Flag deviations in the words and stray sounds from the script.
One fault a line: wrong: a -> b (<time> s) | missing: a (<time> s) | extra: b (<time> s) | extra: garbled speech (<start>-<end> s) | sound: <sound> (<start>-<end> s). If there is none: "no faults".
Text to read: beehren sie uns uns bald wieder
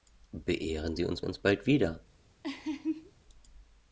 sound: laugh (2.4-3.1 s)